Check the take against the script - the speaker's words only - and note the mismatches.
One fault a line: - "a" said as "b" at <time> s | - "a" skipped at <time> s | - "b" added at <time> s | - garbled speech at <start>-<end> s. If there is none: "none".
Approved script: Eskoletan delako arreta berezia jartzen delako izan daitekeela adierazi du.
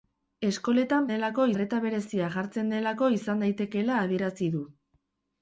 none